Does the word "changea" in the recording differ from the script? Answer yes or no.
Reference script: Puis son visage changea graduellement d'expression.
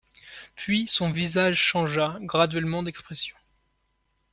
no